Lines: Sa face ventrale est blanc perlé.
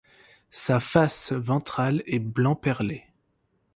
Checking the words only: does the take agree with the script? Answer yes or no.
yes